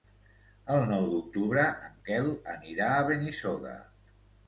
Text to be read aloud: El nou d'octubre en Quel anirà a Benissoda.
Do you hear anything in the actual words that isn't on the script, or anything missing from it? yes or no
no